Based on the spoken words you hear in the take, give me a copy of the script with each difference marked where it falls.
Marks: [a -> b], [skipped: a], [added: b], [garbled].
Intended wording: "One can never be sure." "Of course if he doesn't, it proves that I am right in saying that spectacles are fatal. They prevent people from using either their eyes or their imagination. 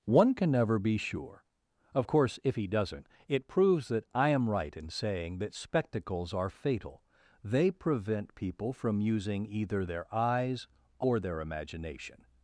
"One can never be sure." "Of course if he doesn't, it proves that I am right in saying that spectacles are fatal. They prevent people from using either their eyes or their imagination.